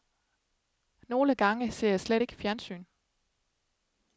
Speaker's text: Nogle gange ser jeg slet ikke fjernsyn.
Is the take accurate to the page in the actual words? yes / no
yes